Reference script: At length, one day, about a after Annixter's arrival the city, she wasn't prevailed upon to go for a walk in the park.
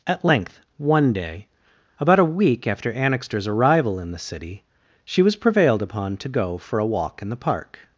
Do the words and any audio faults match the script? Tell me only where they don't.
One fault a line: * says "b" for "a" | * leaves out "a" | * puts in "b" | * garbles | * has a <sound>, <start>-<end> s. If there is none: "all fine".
* puts in "week"
* puts in "in"
* says "was" for "wasn't"